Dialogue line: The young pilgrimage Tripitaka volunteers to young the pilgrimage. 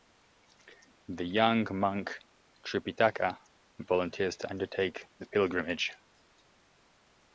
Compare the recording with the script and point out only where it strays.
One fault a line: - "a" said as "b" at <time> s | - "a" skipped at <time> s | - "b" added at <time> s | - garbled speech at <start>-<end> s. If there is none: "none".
- "pilgrimage" said as "monk" at 1.7 s
- "young" said as "undertake" at 4.5 s